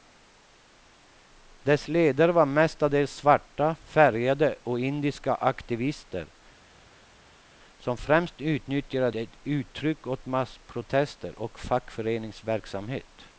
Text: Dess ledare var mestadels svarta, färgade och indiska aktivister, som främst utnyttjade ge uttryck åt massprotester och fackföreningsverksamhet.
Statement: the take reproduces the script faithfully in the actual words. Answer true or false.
true